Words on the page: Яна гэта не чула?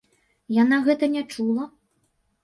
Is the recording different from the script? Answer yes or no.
no